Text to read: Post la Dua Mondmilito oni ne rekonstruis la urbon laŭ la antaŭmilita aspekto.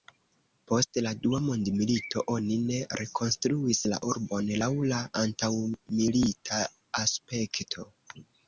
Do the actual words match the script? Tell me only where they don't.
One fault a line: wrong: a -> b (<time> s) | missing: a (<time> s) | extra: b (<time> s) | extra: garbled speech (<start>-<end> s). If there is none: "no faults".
no faults